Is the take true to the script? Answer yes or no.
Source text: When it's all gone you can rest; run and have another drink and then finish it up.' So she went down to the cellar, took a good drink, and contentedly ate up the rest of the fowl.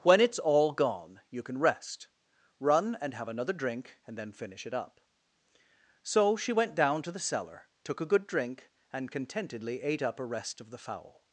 no